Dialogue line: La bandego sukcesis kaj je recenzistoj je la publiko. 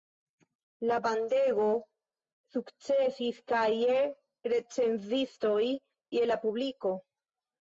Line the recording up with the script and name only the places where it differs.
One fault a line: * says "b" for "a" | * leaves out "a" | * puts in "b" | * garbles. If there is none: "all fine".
all fine